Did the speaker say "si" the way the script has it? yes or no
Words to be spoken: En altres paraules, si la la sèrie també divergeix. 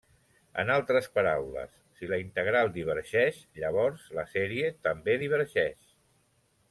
yes